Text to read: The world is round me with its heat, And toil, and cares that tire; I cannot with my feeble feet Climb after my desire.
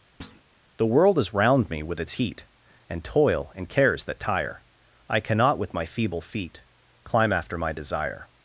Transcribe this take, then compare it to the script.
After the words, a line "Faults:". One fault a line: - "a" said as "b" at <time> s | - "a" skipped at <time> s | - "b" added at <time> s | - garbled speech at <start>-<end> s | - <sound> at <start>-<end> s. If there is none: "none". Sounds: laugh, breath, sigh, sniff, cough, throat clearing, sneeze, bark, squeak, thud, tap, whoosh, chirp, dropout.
The world is round me with its heat, And toil, and cares that tire; I cannot with my feeble feet Climb after my desire.
Faults:
- thud at 0.2-0.4 s